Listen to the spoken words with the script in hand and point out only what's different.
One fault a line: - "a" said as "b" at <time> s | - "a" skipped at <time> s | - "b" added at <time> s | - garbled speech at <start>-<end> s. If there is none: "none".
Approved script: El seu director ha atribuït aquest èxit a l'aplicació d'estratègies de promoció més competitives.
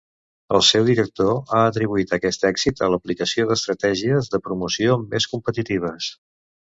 none